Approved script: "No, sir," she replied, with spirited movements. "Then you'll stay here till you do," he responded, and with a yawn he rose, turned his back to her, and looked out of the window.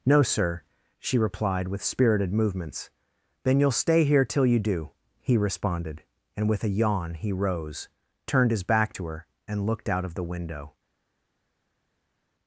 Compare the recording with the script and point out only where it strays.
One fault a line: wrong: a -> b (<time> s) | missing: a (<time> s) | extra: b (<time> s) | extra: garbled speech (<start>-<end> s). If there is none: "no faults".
no faults